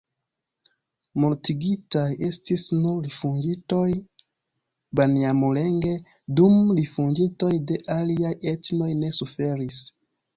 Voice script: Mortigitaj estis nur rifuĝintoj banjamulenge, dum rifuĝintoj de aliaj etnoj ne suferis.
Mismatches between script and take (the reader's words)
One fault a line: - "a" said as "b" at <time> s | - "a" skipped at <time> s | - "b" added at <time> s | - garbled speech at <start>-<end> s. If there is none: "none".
none